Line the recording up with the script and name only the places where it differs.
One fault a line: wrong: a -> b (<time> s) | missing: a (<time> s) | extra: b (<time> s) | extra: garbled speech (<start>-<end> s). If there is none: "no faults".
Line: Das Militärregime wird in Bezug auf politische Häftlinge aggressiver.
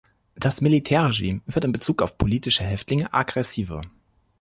no faults